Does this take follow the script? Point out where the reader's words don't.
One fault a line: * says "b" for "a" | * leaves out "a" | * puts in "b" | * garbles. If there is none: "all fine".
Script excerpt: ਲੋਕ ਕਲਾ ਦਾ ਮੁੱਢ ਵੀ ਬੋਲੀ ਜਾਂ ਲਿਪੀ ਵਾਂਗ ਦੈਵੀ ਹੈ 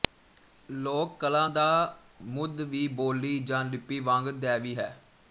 all fine